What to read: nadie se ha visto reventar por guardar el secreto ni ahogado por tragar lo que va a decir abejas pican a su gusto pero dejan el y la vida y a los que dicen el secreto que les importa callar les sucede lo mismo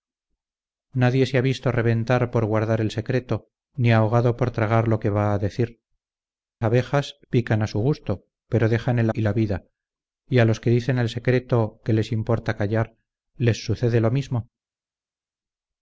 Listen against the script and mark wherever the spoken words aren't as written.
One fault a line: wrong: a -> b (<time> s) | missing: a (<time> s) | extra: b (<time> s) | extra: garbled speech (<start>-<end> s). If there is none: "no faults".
no faults